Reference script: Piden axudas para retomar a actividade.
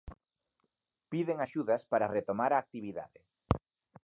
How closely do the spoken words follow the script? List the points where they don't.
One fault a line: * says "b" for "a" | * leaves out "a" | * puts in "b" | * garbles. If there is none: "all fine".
all fine